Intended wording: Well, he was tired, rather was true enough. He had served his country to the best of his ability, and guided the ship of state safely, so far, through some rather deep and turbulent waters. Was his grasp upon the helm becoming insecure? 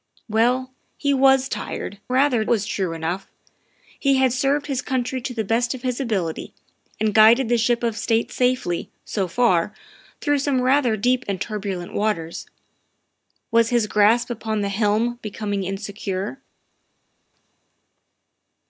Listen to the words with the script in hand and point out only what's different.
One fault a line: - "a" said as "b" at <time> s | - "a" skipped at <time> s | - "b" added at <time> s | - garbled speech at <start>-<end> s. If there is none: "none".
none